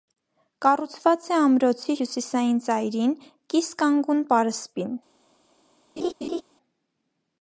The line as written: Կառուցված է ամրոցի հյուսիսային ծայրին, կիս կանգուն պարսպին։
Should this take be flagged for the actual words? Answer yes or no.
no